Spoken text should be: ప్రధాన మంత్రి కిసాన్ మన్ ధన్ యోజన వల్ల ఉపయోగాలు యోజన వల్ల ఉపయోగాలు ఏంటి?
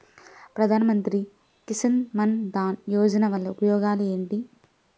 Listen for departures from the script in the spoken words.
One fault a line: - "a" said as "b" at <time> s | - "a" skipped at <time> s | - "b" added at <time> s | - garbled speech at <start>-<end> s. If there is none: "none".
- "యోజన వల్ల ఉపయోగాలు" skipped at 4.0 s